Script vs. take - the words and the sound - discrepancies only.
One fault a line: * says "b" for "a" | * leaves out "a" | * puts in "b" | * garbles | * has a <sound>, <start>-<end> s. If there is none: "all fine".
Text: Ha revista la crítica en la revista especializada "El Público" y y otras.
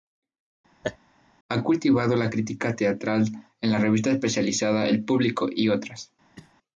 * has a laugh, 0.8-1.0 s
* says "cultivado" for "revista"
* puts in "teatral"
* leaves out "y"
* has a cough, 6.3-6.5 s